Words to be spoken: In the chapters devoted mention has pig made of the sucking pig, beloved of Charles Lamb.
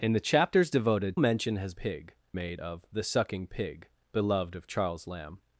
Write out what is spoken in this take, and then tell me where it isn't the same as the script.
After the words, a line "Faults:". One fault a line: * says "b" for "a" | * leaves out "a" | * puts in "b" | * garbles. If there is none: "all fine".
In the chapters devoted mention has pig made of the sucking pig, beloved of Charles Lamb.
Faults:
all fine